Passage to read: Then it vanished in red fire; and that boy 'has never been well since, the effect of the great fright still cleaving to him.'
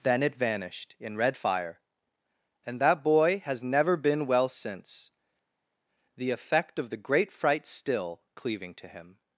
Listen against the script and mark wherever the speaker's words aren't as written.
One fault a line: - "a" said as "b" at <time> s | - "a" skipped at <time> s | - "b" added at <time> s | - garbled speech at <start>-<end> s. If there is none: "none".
none